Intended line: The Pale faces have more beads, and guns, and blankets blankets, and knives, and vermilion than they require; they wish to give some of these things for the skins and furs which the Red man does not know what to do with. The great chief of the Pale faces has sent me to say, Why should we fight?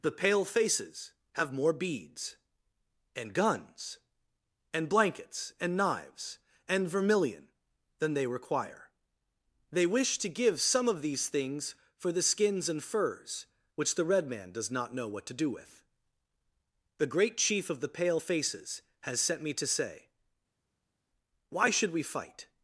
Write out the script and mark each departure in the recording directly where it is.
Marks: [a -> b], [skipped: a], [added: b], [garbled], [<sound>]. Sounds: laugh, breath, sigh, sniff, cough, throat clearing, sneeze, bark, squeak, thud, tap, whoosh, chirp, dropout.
The Pale faces have more beads, and guns, and blankets [skipped: blankets,] and knives, and vermilion than they require; they wish to give some of these things for the skins and furs which the Red man does not know what to do with. The great chief of the Pale faces has sent me to say, Why should we fight?